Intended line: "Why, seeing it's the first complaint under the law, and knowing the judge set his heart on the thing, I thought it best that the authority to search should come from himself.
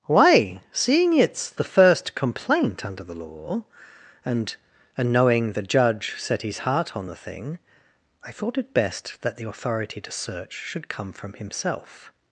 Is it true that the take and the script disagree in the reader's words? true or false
true